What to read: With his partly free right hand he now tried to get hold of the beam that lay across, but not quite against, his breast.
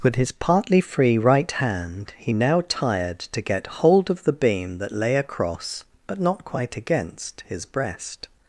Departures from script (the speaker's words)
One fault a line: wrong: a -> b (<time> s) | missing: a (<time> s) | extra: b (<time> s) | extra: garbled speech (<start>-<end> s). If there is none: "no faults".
wrong: tried -> tired (2.7 s)